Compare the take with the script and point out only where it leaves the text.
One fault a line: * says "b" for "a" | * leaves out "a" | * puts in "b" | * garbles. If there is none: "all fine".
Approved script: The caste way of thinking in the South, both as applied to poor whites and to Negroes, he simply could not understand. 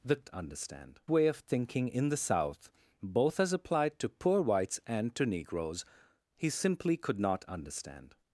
* says "understand" for "caste"